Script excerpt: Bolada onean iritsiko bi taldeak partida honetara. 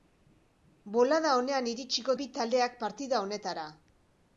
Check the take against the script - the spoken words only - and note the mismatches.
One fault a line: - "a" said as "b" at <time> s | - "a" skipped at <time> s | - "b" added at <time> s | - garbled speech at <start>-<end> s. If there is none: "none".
none